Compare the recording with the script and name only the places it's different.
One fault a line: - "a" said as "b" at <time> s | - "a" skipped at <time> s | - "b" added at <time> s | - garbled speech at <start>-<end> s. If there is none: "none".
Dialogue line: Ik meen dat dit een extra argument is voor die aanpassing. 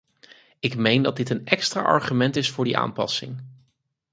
none